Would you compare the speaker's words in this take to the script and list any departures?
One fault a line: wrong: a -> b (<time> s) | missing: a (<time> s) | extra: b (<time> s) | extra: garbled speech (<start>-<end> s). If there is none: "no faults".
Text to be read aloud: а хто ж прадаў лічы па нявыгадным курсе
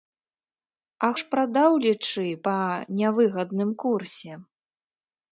missing: хто (1.1 s)